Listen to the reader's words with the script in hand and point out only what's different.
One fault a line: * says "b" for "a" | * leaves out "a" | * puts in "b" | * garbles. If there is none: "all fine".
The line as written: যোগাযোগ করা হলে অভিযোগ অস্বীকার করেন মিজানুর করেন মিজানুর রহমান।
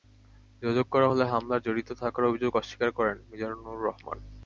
* puts in "হামলায় জড়িত থাকার"
* leaves out "করেন মিজানুর"